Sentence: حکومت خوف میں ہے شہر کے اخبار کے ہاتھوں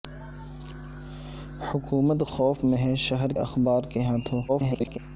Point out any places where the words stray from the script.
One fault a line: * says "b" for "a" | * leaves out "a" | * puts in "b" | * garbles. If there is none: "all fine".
* leaves out "کے"
* garbles